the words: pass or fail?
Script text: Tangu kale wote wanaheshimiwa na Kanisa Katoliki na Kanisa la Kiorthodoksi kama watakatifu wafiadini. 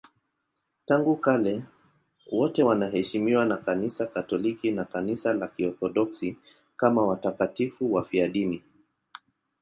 pass